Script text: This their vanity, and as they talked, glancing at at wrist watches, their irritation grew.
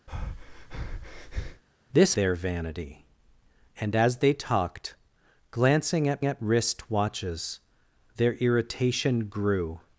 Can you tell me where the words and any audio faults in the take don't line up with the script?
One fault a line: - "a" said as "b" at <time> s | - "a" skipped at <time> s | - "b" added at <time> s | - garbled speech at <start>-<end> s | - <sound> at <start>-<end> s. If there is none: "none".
- breath at 0.1-1.6 s